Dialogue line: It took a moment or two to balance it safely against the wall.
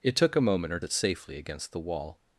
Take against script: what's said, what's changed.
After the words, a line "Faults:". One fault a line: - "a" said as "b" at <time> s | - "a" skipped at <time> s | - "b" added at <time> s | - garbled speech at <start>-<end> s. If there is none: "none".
It took a moment or it safely against the wall.
Faults:
- "two to balance" skipped at 0.8 s